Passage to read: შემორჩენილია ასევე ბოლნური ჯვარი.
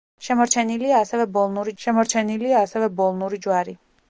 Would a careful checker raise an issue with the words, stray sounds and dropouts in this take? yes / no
yes